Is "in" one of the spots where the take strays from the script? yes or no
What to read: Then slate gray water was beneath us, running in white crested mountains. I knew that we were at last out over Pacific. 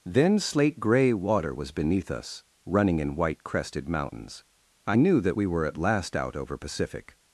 no